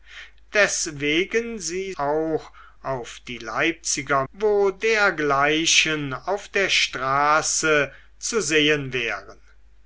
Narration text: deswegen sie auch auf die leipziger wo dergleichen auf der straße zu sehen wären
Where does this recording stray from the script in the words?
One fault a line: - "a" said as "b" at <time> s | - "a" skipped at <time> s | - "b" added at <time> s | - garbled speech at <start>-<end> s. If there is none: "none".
none